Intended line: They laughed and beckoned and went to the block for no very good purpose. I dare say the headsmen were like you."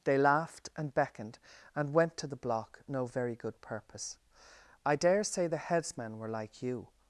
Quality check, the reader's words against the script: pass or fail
fail